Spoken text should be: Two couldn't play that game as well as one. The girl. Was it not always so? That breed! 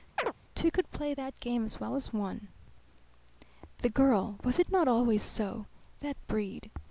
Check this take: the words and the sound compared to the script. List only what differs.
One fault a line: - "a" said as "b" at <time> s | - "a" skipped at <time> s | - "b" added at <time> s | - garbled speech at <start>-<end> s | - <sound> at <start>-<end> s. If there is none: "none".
- chirp at 0.2-0.3 s
- "couldn't" said as "could" at 0.7 s